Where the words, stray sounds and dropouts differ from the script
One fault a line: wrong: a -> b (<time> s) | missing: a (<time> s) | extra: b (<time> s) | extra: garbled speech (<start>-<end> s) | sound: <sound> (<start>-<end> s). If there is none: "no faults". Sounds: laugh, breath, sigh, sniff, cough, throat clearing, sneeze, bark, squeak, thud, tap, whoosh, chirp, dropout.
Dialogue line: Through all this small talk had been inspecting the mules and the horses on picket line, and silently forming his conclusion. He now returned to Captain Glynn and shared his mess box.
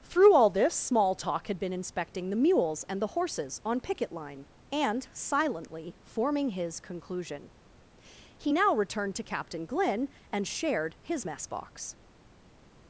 no faults